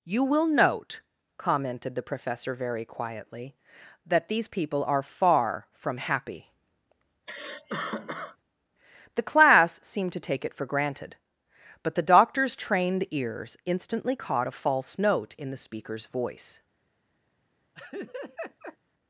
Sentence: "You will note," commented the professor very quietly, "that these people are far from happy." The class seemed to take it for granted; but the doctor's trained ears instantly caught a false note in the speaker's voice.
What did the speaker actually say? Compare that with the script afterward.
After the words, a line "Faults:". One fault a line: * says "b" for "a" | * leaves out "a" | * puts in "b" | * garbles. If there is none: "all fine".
"You will note," commented the professor very quietly, "that these people are far from happy." The class seemed to take it for granted; but the doctor's trained ears instantly caught a false note in the speaker's voice.
Faults:
all fine